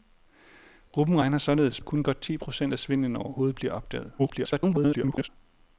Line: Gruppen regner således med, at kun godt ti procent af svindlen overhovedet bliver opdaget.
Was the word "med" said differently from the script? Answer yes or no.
yes